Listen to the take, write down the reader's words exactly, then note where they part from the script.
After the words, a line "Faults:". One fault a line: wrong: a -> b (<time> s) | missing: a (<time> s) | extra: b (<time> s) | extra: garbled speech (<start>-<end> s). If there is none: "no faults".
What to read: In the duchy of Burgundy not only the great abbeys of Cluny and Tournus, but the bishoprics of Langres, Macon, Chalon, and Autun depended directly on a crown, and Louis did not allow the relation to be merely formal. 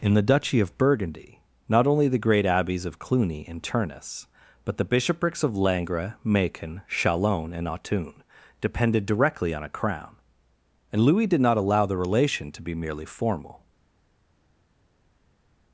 In the duchy of Burgundy not only the great abbeys of Cluny and Tournus, but the bishoprics of Langres, Macon, Chalon, and Autun depended directly on a crown, and Louis did not allow the relation to be merely formal.
Faults:
no faults